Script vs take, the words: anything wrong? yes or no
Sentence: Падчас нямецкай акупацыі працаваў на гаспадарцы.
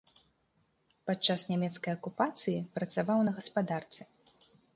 no